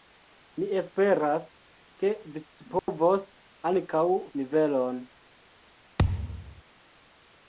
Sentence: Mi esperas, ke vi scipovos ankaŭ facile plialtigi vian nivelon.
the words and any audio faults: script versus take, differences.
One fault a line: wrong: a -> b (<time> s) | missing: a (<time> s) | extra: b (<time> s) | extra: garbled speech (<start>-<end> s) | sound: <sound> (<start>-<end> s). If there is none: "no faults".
sound: dropout (2.8-2.9 s)
missing: facile plialtigi vian (4.0 s)
sound: thud (6.0-6.6 s)